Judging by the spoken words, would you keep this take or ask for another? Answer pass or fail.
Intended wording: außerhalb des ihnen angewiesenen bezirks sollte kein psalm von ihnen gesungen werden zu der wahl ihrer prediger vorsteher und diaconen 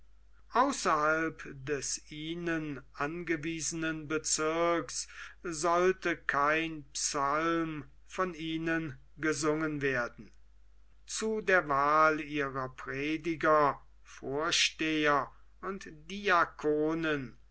pass